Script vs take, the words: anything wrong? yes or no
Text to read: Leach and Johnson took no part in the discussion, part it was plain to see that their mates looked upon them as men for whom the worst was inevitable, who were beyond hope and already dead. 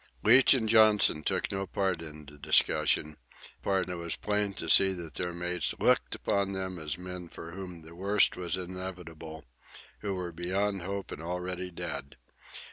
no